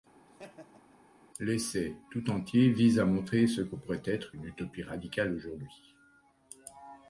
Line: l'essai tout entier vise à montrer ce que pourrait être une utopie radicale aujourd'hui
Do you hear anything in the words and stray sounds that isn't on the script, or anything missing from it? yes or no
yes